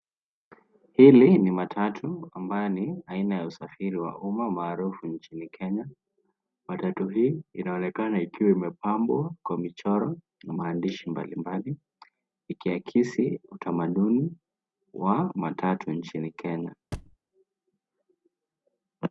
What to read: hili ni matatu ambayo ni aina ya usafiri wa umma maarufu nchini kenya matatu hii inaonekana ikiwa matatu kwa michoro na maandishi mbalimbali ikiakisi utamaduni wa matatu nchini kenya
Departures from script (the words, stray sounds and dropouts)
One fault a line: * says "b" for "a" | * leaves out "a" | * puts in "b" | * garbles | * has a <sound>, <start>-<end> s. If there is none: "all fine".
* says "imepambwa" for "matatu"
* has a thud, 16.9-17.2 s